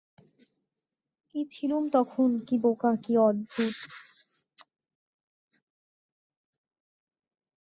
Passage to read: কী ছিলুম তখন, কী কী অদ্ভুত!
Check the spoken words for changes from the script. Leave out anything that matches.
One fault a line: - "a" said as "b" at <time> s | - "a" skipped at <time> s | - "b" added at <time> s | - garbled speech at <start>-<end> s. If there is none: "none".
- "বোকা" added at 2.6 s